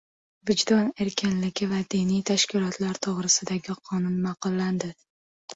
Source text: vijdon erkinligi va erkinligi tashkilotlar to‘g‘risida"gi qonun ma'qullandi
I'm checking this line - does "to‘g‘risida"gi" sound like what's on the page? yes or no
yes